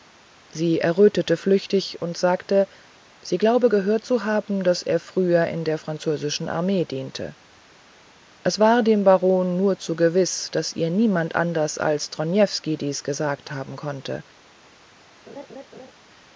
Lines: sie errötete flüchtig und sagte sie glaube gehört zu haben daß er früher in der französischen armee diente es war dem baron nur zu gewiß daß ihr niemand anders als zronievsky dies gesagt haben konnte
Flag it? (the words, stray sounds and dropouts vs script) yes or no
yes